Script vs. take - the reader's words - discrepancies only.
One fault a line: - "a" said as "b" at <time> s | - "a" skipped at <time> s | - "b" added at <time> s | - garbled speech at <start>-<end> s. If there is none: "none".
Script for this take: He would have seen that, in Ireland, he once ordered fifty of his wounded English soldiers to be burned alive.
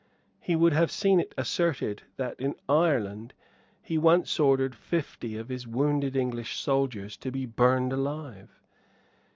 - "it asserted" added at 1.2 s